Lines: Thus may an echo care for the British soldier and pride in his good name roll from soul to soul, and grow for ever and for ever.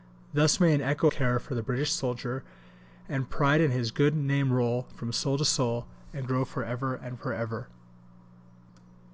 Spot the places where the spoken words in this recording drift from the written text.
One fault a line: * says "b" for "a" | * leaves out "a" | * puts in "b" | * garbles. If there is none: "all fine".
all fine